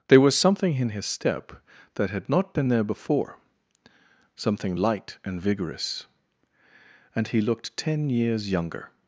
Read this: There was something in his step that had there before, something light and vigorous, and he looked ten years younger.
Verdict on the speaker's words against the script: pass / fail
fail